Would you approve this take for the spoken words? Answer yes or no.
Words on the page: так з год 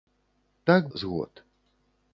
yes